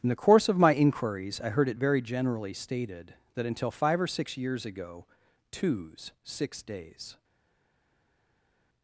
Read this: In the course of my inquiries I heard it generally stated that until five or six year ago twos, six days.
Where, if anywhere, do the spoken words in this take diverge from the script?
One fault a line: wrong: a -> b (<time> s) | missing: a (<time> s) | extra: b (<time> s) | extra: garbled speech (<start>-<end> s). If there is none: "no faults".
extra: very (1.8 s)
wrong: year -> years (4.4 s)